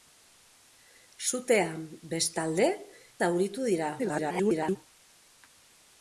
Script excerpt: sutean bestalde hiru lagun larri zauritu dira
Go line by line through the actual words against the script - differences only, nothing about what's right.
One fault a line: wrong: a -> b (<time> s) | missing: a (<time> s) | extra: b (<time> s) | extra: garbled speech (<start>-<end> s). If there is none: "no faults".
missing: hiru lagun larri (2.7 s)
extra: garbled speech (4.0-4.8 s)